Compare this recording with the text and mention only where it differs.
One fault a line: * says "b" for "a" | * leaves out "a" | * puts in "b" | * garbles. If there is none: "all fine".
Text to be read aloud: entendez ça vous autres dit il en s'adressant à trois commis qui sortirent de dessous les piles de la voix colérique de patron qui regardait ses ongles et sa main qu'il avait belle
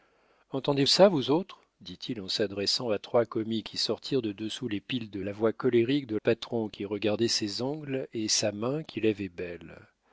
all fine